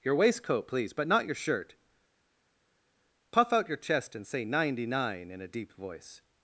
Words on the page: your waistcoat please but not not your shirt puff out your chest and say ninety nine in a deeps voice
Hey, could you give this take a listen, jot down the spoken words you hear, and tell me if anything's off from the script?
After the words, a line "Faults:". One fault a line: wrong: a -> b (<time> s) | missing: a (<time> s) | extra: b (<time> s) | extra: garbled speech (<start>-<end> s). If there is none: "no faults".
your waistcoat please but not your shirt puff out your chest and say ninety nine in a deep voice
Faults:
missing: not (1.2 s)
wrong: deeps -> deep (5.5 s)